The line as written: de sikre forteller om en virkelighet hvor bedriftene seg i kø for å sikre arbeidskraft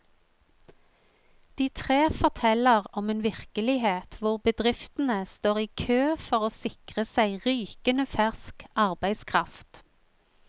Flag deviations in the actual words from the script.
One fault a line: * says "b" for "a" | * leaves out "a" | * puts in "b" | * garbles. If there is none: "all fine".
* says "tre" for "sikre"
* says "står" for "seg"
* puts in "seg rykende fersk"